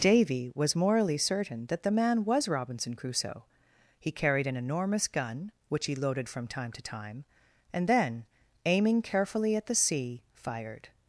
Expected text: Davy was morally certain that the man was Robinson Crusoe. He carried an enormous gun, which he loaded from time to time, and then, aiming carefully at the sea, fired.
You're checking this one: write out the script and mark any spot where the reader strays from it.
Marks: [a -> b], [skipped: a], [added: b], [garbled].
Davy was morally certain that the man was Robinson Crusoe. He carried an enormous gun, which he loaded from time to time, and then, aiming carefully at the sea, fired.